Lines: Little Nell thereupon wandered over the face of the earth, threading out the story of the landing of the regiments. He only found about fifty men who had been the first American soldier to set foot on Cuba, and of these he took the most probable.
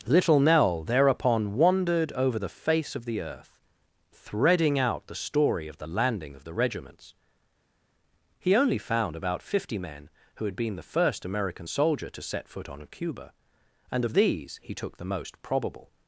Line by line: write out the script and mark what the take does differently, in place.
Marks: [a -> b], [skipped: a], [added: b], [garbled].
Little Nell thereupon wandered over the face of the earth, threading out the story of the landing of the regiments. He only found about fifty men who had been the first American soldier to set foot on Cuba, and of these he took the most probable.